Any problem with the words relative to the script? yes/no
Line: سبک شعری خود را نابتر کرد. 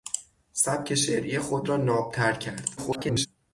yes